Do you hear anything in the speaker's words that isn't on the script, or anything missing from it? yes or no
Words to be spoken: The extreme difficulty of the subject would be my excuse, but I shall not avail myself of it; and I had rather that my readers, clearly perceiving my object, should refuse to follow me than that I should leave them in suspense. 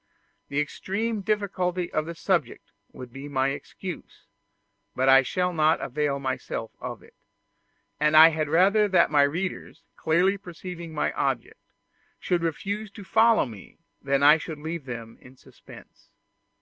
no